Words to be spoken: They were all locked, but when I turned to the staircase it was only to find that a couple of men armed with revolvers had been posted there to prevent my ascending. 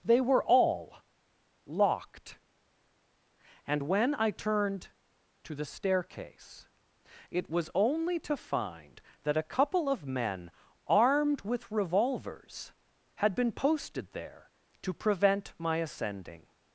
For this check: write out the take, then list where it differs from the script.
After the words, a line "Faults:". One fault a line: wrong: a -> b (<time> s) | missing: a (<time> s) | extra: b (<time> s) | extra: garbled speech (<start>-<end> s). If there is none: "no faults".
They were all locked, and when I turned to the staircase it was only to find that a couple of men armed with revolvers had been posted there to prevent my ascending.
Faults:
wrong: but -> and (3.7 s)